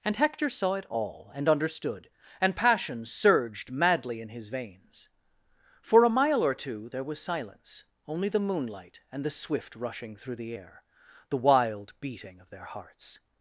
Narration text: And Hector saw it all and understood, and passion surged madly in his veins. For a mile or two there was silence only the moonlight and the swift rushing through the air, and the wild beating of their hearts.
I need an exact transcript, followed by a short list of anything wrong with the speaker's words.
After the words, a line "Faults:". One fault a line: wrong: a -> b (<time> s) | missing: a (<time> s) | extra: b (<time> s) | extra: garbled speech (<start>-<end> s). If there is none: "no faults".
And Hector saw it all and understood, and passion surged madly in his veins. For a mile or two there was silence only the moonlight and the swift rushing through the air, the wild beating of their hearts.
Faults:
missing: and (10.8 s)